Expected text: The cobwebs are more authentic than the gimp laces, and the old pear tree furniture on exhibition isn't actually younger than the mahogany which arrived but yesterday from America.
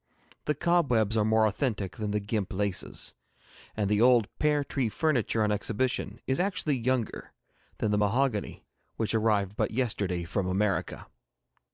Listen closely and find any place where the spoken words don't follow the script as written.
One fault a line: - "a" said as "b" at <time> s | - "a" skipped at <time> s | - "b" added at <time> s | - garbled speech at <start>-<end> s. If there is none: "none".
- "isn't" said as "is" at 6.2 s